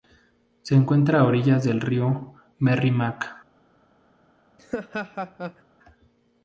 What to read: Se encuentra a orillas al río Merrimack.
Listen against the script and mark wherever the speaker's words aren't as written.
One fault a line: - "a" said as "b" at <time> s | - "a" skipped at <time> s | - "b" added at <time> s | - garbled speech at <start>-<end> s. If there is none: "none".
- "al" said as "del" at 1.6 s